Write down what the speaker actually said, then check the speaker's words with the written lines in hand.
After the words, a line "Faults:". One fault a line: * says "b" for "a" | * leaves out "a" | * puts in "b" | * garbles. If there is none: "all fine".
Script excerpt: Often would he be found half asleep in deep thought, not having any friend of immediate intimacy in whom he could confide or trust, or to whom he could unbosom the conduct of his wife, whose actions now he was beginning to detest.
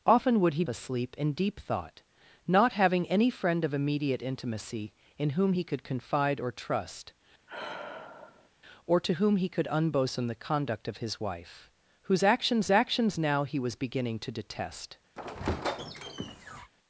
Often would he asleep in deep thought, not having any friend of immediate intimacy in whom he could confide or trust, or to whom he could unbosom the conduct of his wife, whose actions actions now he was beginning to detest.
Faults:
* leaves out "be found half"
* puts in "actions"